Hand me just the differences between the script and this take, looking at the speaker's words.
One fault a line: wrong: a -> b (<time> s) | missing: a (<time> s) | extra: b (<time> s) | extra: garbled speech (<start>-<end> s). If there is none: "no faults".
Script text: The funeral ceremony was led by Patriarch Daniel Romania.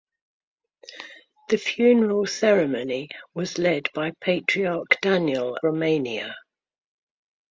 no faults